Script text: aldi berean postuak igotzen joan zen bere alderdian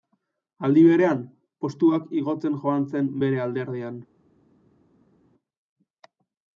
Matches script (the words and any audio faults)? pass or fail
pass